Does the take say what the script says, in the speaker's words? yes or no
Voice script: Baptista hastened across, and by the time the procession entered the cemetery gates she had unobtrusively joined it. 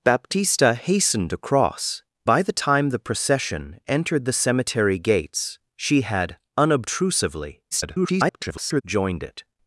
no